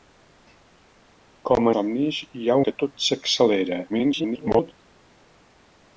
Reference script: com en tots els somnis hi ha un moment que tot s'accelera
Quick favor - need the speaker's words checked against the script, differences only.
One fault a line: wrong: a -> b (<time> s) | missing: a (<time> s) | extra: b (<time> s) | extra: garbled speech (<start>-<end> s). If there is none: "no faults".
missing: en tots els (1.7 s)
missing: un moment (2.6 s)
extra: garbled speech (3.9-4.7 s)